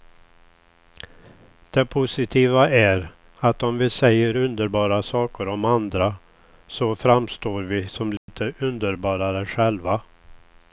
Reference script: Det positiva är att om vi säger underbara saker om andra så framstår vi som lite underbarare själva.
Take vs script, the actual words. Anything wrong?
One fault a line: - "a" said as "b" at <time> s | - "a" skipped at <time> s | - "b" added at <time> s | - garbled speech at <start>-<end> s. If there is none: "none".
none